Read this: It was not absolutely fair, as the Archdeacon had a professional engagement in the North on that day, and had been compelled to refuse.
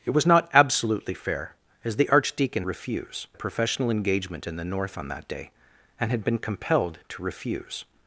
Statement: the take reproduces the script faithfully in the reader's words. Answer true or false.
false